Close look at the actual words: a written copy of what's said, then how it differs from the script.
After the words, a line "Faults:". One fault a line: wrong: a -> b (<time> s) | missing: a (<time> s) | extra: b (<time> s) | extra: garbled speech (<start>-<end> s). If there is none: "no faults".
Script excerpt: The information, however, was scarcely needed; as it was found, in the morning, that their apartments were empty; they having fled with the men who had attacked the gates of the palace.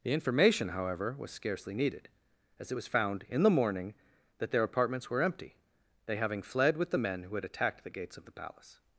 The information, however, was scarcely needed; as it was found, in the morning, that their apartments were empty; they having fled with the men who had attacked the gates of the palace.
Faults:
no faults